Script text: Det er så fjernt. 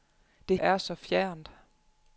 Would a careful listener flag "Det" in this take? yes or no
no